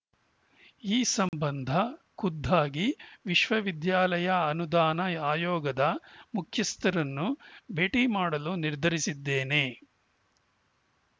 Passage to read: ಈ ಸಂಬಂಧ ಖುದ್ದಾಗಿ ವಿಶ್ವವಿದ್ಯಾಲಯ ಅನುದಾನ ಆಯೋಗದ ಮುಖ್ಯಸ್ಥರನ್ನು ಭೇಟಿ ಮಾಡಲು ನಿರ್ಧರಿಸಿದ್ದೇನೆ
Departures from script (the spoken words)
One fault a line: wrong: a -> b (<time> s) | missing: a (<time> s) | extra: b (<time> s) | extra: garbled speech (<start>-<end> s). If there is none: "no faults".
no faults